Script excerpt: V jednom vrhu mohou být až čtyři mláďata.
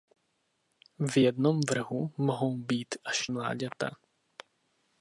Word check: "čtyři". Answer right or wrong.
wrong